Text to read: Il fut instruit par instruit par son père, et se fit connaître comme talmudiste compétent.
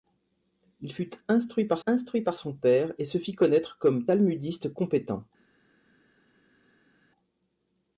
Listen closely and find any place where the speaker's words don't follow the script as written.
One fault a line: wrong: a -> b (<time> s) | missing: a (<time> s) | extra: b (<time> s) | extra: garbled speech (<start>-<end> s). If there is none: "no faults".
no faults